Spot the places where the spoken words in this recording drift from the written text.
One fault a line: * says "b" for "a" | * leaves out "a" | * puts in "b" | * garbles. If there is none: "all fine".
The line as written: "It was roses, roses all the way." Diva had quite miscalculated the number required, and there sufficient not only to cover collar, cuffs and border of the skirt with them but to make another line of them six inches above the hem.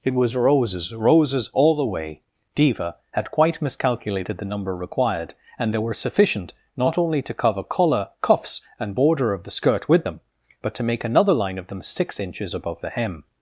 * puts in "were"